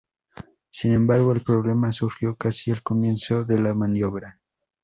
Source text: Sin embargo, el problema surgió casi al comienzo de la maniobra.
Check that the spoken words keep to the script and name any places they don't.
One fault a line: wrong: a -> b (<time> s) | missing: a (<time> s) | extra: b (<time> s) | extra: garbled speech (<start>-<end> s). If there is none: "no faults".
no faults